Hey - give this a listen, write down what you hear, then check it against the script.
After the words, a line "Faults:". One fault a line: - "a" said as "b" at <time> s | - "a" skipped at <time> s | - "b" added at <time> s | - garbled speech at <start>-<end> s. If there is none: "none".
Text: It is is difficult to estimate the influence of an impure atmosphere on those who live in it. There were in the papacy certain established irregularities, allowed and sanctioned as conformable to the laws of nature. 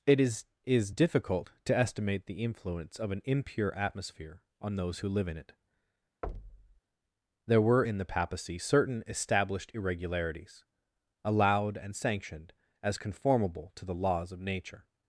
It is is difficult to estimate the influence of an impure atmosphere on those who live in it. There were in the papacy certain established irregularities, allowed and sanctioned as conformable to the laws of nature.
Faults:
none